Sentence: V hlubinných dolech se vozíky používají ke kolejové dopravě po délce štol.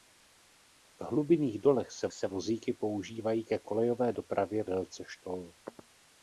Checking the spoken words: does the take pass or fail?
fail